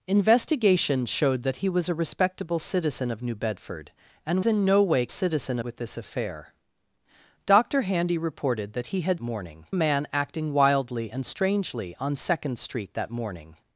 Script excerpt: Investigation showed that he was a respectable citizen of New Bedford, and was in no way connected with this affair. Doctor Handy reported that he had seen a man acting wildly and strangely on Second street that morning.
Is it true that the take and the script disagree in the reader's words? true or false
true